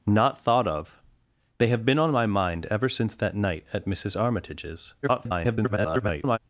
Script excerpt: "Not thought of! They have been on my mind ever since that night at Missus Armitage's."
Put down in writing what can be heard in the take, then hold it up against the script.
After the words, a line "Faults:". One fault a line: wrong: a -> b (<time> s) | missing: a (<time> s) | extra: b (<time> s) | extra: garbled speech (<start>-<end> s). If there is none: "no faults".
"Not thought of! They have been on my mind ever since that night at Missus Armitage's." [garbled]
Faults:
extra: garbled speech (5.0-6.4 s)